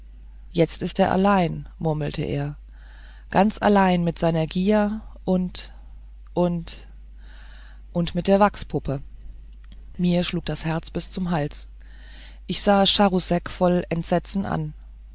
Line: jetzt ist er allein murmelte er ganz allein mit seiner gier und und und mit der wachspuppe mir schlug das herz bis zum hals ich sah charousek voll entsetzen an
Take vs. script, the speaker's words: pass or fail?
pass